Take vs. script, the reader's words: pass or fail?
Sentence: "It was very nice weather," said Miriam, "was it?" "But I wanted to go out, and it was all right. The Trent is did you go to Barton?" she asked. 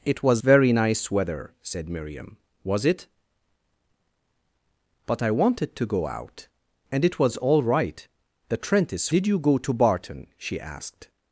pass